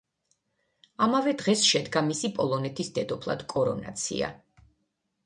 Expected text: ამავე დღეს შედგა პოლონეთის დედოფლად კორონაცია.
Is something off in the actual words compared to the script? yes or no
yes